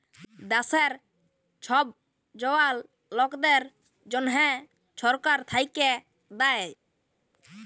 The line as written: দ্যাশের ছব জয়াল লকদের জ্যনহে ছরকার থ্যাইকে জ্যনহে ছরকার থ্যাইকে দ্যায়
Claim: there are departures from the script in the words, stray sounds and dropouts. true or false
true